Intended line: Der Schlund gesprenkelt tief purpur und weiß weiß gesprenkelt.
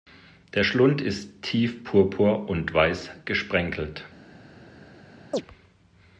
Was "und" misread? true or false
false